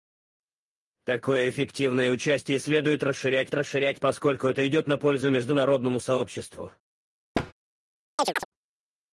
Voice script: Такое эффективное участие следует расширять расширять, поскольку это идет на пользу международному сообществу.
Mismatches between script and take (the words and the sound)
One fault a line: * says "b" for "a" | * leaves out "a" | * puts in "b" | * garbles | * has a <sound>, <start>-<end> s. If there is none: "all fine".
* has a thud, 7.3-7.5 s
* has a chirp, 8.2-8.5 s